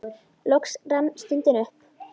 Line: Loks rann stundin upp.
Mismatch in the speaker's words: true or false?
false